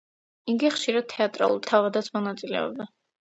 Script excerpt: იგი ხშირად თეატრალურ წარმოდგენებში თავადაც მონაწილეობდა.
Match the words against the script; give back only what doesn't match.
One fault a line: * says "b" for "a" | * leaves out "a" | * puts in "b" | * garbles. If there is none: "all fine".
* leaves out "წარმოდგენებში"